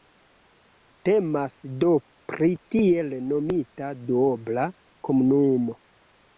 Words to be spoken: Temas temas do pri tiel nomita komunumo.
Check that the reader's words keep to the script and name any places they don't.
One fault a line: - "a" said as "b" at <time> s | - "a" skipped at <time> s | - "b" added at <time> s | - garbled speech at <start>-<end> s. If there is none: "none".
- "temas" skipped at 1.6 s
- "duobla" added at 4.1 s